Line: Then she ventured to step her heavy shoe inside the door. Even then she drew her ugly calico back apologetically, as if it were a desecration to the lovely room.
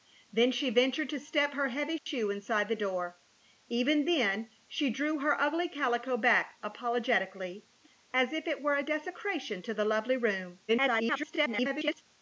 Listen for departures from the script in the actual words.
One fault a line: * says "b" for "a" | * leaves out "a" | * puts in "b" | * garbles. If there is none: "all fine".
* garbles